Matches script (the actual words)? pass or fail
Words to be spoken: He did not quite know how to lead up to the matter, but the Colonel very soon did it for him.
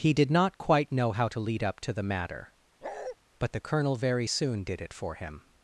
pass